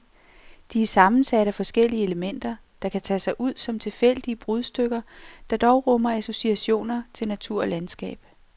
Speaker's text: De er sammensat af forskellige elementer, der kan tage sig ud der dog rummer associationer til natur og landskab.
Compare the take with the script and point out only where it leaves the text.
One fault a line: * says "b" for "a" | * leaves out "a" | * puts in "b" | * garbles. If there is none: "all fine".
* puts in "som tilfældige brudstykker"